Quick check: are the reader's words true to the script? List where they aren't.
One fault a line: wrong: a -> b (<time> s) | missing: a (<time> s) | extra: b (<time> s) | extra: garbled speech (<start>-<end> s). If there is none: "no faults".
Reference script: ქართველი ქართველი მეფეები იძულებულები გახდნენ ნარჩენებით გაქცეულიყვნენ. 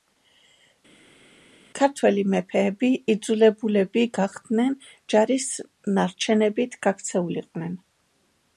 missing: ქართველი (2.2 s)
extra: ჯარის (5.2 s)